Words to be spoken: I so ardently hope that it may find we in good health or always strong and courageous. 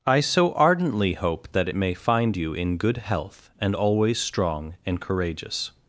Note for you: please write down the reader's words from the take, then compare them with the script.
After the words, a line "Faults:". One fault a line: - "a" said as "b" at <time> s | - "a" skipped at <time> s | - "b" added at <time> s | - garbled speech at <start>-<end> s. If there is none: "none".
I so ardently hope that it may find you in good health and always strong and courageous.
Faults:
- "we" said as "you" at 2.4 s
- "or" said as "and" at 3.6 s